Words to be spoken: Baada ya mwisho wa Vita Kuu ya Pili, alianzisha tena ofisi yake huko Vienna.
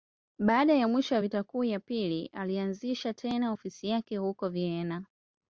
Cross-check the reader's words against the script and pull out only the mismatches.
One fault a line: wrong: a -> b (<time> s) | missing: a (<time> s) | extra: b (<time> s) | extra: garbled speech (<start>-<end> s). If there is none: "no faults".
no faults